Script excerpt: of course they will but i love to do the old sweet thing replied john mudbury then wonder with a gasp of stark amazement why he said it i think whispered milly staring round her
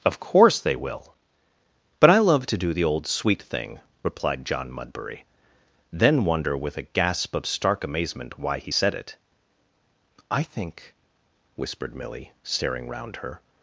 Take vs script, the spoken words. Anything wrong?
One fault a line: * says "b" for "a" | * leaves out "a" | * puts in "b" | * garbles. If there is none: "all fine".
all fine